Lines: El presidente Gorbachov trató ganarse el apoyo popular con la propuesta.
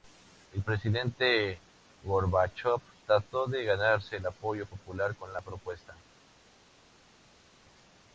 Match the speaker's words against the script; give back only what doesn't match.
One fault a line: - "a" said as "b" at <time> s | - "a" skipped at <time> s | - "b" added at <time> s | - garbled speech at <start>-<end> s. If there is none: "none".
- "de" added at 3.5 s